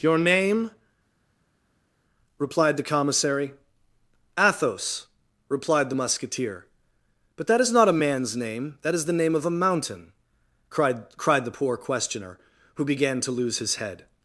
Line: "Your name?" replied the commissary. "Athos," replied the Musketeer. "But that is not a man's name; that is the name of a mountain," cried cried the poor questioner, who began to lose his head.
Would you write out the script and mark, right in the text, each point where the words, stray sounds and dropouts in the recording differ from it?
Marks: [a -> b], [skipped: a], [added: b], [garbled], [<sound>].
"Your name?" replied the commissary. "Athos," replied the Musketeer. "But that is not a man's name; that is the name of a mountain," cried cried the poor questioner, who began to lose his head.